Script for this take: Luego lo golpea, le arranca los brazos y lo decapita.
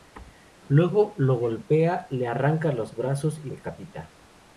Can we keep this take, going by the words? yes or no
no